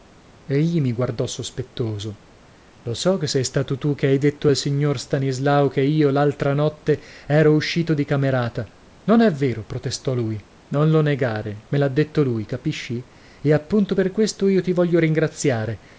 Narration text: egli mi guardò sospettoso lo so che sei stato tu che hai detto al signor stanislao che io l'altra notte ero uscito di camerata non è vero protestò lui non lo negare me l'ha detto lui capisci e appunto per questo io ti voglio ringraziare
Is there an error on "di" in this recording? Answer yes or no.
no